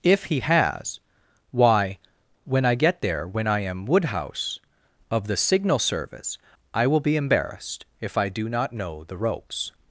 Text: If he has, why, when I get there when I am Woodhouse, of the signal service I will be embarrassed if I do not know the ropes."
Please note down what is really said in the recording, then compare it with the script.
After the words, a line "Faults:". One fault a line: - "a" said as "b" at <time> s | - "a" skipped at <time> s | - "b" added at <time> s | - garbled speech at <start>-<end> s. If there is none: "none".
If he has, why, when I get there when I am Woodhouse, of the signal service I will be embarrassed if I do not know the ropes."
Faults:
none